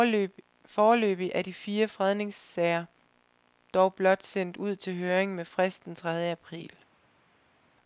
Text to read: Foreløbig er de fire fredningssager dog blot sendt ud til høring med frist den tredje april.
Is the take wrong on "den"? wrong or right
right